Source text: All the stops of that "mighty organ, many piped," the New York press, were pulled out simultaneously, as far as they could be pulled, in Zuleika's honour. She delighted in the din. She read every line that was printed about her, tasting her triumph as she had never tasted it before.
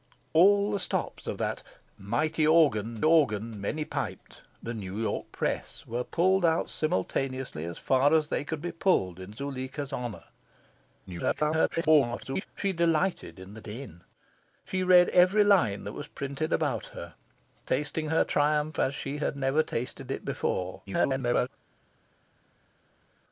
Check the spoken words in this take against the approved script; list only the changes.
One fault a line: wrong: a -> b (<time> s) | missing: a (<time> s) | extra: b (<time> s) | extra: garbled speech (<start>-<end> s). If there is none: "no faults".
extra: organ (3.0 s)
extra: garbled speech (11.1-12.5 s)
extra: garbled speech (20.9-21.5 s)